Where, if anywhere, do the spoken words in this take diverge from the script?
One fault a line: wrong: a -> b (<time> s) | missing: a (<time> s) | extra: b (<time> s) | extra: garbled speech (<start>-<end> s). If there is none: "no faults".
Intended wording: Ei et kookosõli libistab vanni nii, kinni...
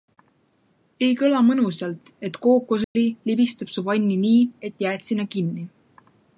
extra: kõla mõnusalt (1.2 s)
extra: su (3.8 s)
extra: et jääd sinna (4.7 s)